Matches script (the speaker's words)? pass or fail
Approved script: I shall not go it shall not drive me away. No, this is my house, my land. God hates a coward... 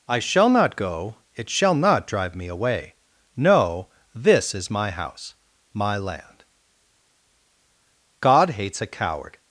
pass